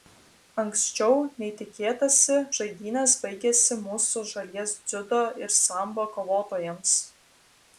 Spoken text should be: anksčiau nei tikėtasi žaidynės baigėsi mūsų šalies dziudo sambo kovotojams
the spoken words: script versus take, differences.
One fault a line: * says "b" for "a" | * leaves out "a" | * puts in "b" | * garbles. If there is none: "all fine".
* puts in "ir"